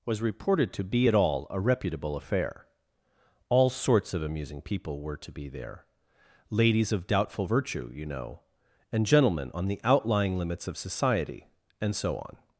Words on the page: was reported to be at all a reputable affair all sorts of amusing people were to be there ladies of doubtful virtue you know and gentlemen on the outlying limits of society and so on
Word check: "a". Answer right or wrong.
right